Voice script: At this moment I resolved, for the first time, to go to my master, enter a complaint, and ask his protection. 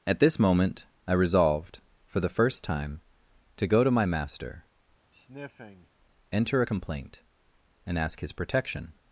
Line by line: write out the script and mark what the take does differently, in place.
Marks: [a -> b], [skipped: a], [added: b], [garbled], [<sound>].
At this moment I resolved, for the first time, to go to my master, [sniff] enter a complaint, and ask his protection.